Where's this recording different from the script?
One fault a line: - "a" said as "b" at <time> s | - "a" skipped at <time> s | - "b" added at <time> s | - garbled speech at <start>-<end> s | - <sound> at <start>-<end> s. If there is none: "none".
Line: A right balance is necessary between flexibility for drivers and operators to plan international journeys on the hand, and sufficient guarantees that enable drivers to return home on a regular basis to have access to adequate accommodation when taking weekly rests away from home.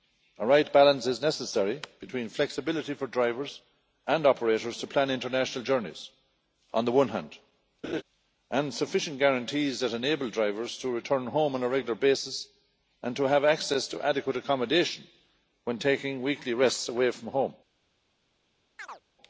- "one" added at 6.9 s
- laugh at 7.8-8.0 s
- "and" added at 13.0 s
- chirp at 18.8-19.0 s